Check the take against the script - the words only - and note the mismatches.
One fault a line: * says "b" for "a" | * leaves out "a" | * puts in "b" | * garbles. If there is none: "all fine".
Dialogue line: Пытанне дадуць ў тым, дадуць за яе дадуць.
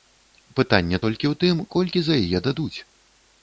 * says "толькі" for "дадуць"
* says "колькі" for "дадуць"